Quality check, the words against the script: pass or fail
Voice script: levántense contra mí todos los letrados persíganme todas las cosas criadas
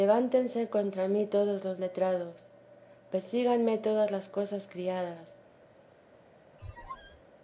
pass